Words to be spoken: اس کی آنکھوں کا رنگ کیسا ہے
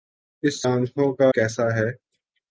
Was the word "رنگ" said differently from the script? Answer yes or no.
yes